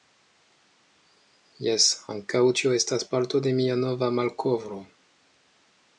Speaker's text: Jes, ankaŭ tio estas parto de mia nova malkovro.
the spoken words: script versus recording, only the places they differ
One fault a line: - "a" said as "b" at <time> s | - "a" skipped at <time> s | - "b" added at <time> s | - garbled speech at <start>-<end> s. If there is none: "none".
none